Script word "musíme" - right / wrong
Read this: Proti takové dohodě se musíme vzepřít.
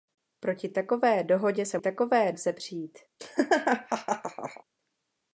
wrong